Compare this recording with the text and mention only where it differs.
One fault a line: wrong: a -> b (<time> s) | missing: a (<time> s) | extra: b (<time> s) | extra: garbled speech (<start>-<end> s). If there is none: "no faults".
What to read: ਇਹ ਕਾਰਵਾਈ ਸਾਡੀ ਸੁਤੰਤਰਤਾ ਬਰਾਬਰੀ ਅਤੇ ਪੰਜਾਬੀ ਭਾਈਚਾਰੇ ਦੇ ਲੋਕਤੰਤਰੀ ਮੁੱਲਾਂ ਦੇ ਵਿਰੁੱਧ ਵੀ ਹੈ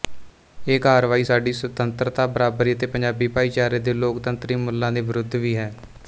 no faults